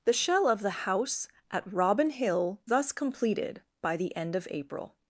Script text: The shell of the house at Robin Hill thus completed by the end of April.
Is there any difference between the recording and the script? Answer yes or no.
no